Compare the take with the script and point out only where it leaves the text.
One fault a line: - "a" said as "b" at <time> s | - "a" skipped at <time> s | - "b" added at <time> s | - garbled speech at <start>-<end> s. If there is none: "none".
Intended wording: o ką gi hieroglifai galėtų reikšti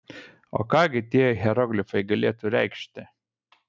- "tie" added at 1.1 s